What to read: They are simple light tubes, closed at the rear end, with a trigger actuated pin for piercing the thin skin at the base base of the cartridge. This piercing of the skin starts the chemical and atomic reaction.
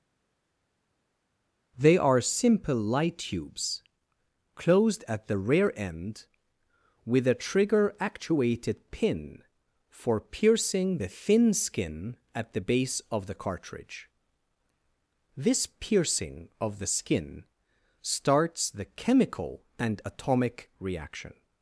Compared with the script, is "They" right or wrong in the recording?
right